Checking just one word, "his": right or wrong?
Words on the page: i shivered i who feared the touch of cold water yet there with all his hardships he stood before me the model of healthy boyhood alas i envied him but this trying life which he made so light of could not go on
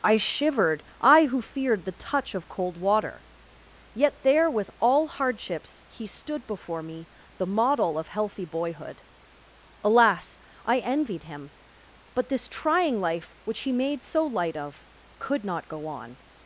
wrong